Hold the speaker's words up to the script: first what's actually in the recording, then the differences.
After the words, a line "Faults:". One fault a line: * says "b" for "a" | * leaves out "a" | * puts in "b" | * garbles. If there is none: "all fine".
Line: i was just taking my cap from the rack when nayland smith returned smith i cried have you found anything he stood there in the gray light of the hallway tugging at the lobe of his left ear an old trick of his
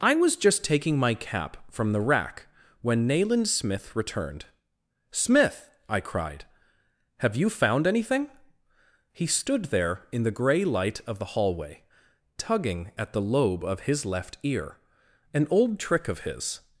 i was just taking my cap from the rack when nayland smith returned smith i cried have you found anything he stood there in the gray light of the hallway tugging at the lobe of his left ear an old trick of his
Faults:
all fine